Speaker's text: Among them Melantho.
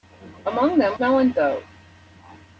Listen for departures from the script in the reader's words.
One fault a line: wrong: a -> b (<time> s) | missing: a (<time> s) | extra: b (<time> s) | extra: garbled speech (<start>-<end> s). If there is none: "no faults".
no faults